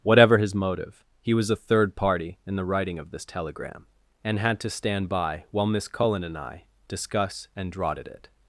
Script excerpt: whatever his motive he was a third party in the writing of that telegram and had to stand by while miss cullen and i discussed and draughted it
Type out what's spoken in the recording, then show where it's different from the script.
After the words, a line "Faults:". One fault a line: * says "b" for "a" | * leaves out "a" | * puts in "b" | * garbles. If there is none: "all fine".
whatever his motive he was a third party in the writing of this telegram and had to stand by while miss cullen and i discuss and draughted it
Faults:
* says "this" for "that"
* says "discuss" for "discussed"